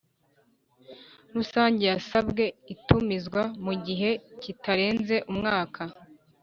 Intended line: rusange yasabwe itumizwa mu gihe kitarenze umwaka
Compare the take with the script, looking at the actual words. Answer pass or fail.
pass